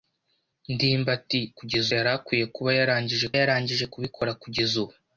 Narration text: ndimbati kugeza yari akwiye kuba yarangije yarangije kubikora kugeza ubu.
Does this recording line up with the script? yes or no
yes